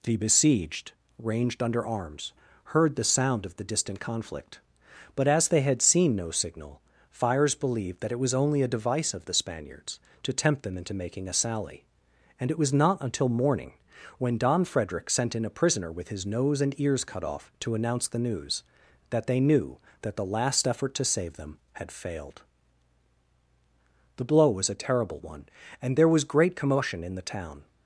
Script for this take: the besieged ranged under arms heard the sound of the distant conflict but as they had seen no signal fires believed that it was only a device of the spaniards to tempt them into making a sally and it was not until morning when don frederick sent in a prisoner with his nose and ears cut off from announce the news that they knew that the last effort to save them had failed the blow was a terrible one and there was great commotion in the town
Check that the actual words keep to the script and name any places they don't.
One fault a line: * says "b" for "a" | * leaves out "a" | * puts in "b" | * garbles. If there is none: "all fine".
* says "to" for "from"